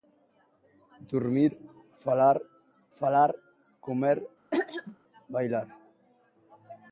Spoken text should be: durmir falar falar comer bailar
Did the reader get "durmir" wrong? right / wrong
right